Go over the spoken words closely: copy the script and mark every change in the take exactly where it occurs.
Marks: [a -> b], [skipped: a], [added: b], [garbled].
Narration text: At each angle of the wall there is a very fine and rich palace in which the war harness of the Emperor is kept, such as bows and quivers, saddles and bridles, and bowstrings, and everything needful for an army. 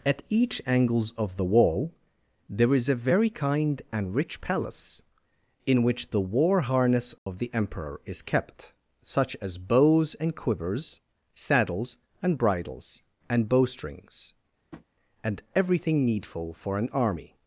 At each [angle -> angles] of the wall there is a very [fine -> kind] and rich palace in which the war harness of the Emperor is kept, such as bows and quivers, saddles and bridles, and bowstrings, and everything needful for an army.